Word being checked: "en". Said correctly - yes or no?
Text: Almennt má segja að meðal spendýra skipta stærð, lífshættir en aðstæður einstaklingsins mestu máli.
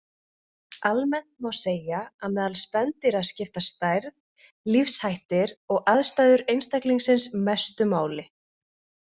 no